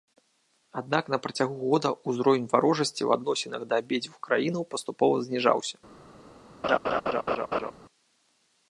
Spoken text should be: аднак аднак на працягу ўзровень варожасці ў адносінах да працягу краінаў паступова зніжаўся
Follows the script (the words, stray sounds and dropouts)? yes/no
no